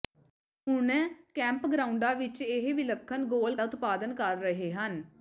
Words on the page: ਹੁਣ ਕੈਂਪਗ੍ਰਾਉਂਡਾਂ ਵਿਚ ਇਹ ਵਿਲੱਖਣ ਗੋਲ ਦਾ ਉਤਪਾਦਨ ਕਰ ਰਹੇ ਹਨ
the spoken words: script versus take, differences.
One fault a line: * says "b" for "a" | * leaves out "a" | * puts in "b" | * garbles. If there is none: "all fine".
all fine